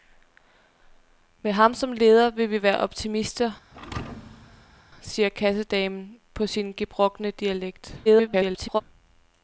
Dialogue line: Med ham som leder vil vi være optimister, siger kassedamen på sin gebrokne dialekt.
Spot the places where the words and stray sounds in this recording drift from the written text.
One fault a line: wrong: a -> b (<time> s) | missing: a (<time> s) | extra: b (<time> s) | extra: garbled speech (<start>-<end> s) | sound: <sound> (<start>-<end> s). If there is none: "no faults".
sound: thud (3.7-4.8 s)
extra: garbled speech (8.0-8.8 s)